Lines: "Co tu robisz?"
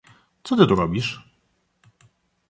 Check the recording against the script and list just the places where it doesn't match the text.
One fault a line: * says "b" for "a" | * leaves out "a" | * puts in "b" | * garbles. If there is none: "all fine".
* puts in "ty"